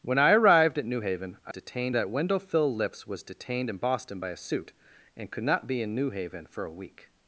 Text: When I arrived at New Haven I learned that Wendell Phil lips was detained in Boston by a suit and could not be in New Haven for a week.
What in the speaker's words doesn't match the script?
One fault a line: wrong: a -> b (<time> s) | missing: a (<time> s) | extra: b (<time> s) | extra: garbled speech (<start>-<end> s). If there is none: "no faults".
wrong: learned -> detained (1.5 s)